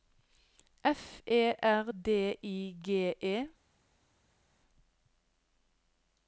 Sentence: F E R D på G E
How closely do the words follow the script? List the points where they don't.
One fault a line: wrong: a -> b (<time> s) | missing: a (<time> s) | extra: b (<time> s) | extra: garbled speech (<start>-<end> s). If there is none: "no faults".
wrong: på -> I (2.4 s)